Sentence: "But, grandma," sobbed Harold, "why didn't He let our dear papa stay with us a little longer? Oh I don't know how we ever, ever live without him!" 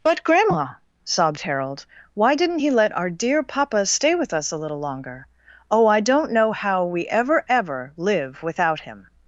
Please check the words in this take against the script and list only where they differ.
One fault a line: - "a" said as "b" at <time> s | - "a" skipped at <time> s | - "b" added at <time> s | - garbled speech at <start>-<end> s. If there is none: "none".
none